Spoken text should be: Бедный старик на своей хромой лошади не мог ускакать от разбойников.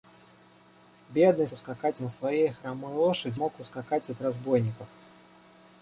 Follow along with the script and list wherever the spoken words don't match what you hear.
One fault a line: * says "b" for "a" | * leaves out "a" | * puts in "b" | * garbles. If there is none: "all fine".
* says "ускакать" for "старик"
* leaves out "не"